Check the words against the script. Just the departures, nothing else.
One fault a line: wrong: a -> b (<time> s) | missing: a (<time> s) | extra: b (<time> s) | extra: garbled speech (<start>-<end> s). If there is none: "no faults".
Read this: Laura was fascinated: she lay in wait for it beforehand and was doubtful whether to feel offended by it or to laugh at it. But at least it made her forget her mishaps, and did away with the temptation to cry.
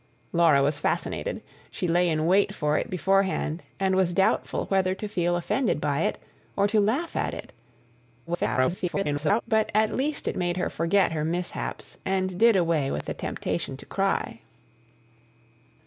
extra: garbled speech (8.3-9.4 s)